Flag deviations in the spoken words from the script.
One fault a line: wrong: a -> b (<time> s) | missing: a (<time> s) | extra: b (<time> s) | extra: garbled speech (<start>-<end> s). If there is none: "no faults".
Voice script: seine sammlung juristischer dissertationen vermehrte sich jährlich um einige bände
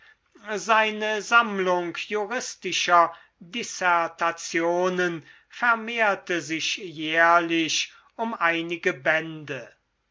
no faults